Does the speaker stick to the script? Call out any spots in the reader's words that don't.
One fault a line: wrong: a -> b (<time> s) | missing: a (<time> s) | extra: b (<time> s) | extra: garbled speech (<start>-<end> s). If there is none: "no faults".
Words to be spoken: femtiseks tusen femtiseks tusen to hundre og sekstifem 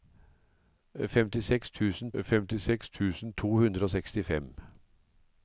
no faults